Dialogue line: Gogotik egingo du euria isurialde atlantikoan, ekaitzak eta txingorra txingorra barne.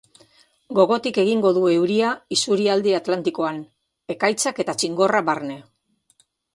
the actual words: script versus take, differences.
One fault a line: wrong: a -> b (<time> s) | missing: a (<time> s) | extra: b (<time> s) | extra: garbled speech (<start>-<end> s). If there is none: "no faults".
missing: txingorra (5.3 s)